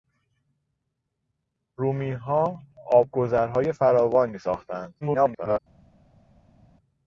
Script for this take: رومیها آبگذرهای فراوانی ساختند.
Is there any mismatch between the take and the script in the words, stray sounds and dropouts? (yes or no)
yes